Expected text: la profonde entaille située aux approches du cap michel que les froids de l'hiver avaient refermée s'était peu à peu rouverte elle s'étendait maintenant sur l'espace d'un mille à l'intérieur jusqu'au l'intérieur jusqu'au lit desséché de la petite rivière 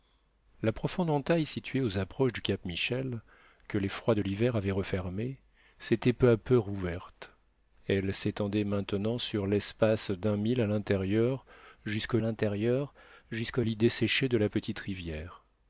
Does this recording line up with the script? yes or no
yes